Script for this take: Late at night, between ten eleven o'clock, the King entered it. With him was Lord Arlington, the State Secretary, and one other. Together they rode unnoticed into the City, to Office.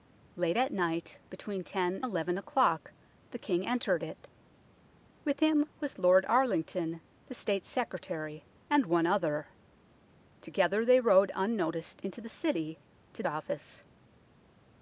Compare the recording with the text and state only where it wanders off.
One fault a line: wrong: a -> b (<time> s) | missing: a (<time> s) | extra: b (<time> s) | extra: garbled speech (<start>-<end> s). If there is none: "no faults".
no faults